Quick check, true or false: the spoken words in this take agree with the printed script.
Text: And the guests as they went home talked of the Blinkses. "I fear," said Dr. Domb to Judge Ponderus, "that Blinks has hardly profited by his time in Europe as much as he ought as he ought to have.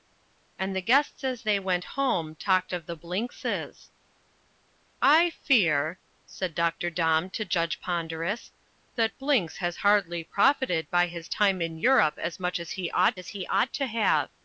true